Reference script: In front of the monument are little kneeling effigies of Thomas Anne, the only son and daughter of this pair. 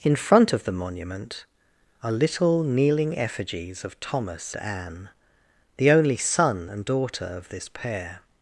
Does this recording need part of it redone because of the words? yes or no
no